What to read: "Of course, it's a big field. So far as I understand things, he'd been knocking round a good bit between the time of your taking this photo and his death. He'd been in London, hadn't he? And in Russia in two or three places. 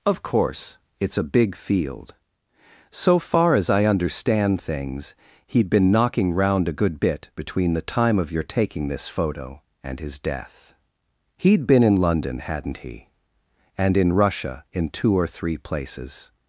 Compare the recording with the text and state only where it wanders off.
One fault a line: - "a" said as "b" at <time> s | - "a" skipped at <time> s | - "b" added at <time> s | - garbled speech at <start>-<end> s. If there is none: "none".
none